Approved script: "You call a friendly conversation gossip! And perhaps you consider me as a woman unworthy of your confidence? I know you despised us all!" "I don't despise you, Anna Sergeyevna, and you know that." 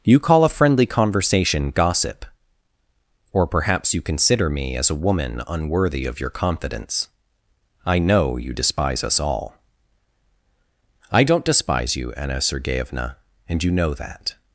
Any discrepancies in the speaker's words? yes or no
yes